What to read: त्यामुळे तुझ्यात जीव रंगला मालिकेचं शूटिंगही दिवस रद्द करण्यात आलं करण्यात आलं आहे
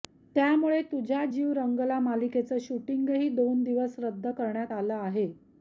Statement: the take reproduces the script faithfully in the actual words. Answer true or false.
false